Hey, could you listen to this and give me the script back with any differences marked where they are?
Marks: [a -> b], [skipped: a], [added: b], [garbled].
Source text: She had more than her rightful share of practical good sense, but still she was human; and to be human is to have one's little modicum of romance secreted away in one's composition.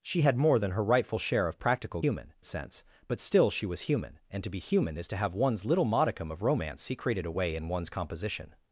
She had more than her rightful share of practical [good -> human] sense, but still she was human; and to be human is to have one's little modicum of romance secreted away in one's composition.